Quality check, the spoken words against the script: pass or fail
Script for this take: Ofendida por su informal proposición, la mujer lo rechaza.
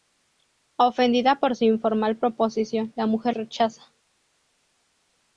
fail